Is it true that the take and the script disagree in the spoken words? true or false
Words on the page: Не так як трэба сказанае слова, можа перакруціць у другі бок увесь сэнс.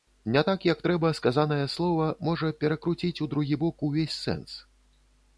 false